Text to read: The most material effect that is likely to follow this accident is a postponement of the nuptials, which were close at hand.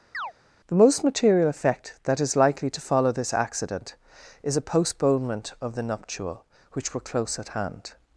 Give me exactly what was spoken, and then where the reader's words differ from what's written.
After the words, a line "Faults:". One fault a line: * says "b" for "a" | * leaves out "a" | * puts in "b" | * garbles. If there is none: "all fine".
The most material effect that is likely to follow this accident is a postponement of the nuptial, which were close at hand.
Faults:
* says "nuptial" for "nuptials"